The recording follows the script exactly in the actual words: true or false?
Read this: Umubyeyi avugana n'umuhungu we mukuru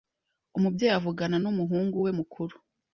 true